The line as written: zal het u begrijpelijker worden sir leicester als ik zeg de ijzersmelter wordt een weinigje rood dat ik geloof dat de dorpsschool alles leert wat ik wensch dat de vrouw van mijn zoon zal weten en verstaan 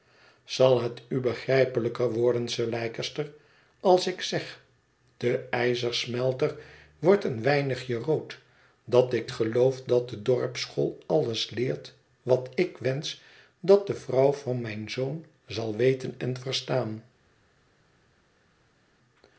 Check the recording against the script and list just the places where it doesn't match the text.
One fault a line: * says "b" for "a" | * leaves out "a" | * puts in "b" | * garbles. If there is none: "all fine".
all fine